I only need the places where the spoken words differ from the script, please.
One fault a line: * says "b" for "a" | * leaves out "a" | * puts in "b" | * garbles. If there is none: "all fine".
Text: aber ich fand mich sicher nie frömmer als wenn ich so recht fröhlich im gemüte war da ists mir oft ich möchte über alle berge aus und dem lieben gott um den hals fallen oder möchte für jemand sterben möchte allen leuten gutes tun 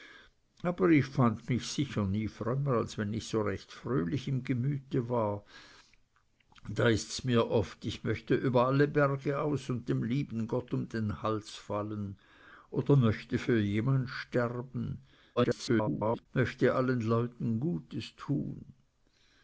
* garbles